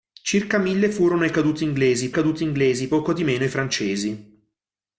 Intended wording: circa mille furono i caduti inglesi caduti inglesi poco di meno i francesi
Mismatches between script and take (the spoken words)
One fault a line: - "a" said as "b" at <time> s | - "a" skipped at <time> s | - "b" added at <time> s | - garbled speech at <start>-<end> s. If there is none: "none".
none